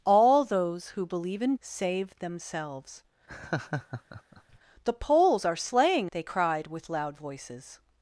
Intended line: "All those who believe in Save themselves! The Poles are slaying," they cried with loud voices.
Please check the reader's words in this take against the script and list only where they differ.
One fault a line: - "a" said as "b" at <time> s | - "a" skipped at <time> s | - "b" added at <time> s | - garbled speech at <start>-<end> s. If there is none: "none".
none